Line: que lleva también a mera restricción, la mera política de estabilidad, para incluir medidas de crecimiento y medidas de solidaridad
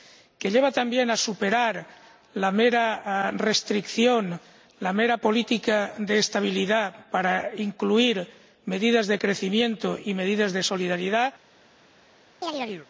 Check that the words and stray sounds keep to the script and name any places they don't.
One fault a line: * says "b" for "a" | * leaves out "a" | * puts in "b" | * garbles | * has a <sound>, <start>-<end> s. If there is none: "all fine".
* puts in "superar la"
* has a chirp, 12.4-12.9 s